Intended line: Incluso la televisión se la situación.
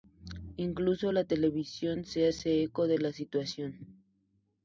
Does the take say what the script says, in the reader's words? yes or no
no